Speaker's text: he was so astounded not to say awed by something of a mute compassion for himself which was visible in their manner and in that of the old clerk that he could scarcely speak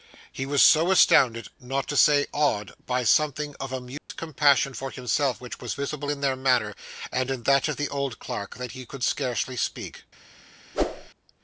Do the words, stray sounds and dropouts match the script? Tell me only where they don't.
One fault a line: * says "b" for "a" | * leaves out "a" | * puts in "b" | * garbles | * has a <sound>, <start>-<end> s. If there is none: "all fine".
* has a dropout, 4.0-4.1 s
* has a whoosh, 10.7-11.1 s